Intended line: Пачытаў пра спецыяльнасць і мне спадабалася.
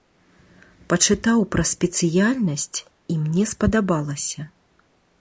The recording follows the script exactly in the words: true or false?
true